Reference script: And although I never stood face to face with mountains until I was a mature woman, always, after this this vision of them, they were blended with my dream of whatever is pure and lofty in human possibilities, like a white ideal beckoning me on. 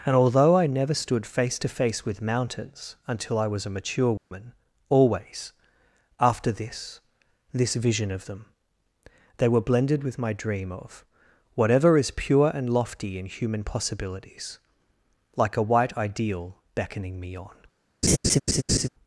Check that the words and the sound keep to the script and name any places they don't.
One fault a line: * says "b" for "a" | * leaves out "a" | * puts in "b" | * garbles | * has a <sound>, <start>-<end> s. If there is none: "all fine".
* has a dropout, 4.2-4.3 s
* has a laugh, 18.0-18.9 s